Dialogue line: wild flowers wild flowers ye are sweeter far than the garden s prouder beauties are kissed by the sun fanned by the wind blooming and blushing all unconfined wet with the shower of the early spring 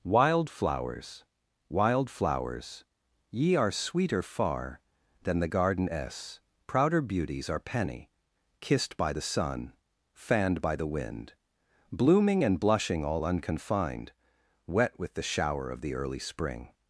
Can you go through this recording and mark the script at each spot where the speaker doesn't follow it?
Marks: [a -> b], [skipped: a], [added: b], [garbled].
wild flowers wild flowers ye are sweeter far than the garden s prouder beauties are [added: penny] kissed by the sun fanned by the wind blooming and blushing all unconfined wet with the shower of the early spring